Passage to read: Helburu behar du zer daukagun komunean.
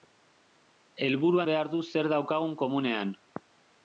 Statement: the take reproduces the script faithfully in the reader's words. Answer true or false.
true